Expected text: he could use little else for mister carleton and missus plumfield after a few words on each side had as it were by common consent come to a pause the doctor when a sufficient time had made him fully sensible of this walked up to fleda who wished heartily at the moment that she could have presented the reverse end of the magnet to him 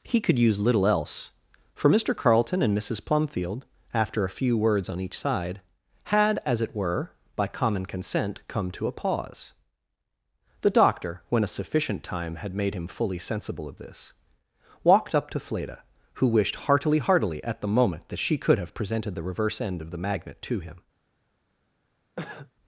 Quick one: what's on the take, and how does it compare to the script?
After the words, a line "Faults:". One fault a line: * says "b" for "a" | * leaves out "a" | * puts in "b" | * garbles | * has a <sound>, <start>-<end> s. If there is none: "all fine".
he could use little else for mister carleton and missus plumfield after a few words on each side had as it were by common consent come to a pause the doctor when a sufficient time had made him fully sensible of this walked up to fleda who wished heartily heartily at the moment that she could have presented the reverse end of the magnet to him
Faults:
* puts in "heartily"
* has a cough, 22.2-22.5 s